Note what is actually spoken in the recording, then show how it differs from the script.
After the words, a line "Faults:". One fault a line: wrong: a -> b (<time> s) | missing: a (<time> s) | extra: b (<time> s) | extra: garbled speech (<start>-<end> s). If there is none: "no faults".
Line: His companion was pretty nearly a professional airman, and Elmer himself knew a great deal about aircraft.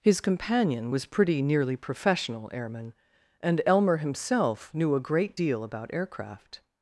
His companion was pretty nearly professional airman, and Elmer himself knew a great deal about aircraft.
Faults:
missing: a (1.8 s)